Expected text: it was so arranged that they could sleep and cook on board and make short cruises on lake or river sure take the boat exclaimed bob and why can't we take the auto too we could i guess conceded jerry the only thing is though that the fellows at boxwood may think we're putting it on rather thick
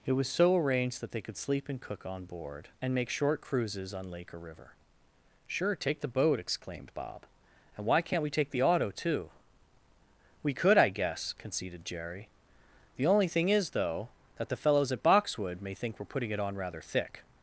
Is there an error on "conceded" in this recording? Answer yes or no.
no